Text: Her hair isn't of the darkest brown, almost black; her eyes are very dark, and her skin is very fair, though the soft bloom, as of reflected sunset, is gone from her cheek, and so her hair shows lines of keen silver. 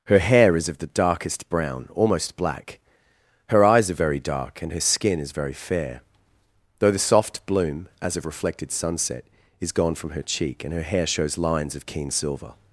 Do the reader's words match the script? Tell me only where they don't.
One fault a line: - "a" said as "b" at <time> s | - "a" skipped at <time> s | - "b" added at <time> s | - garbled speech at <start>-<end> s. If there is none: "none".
- "isn't" said as "is" at 0.6 s
- "so" skipped at 10.7 s